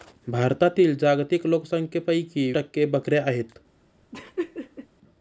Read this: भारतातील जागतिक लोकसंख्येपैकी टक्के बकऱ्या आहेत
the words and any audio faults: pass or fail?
fail